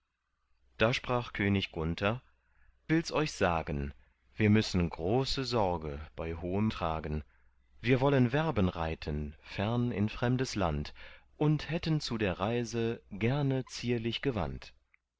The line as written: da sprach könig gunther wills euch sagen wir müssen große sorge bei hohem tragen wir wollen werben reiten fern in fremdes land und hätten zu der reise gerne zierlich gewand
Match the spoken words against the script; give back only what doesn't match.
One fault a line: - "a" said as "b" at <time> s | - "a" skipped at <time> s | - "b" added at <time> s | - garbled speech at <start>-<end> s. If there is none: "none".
none